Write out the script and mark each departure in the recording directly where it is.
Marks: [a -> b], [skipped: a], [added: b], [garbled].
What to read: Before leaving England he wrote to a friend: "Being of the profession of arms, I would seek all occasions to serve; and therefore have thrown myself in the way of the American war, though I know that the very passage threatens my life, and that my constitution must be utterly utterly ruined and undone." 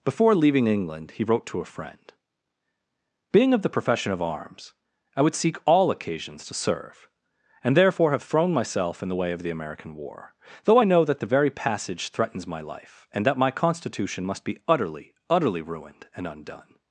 Before leaving England he wrote to a friend: "Being of the profession of arms, I would seek all occasions to serve; and therefore have thrown myself in the way of the American war, though I know that the very passage threatens my life, and that my constitution must be utterly utterly ruined and undone."